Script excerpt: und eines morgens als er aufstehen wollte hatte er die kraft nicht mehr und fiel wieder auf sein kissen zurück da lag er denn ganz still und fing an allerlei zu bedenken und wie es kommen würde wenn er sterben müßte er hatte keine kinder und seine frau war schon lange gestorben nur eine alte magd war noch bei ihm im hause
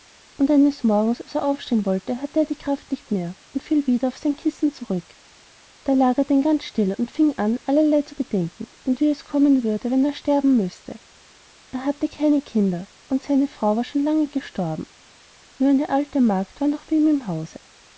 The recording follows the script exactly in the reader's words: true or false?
true